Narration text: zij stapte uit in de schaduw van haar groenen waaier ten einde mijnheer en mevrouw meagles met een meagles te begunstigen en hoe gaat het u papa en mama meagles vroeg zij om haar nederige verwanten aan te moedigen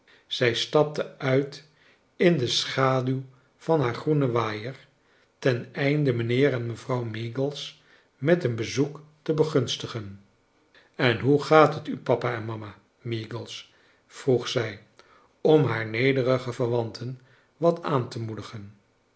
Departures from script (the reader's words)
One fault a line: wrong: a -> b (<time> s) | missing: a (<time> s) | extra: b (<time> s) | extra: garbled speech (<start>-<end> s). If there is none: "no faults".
wrong: meagles -> bezoek (8.5 s)
extra: wat (17.6 s)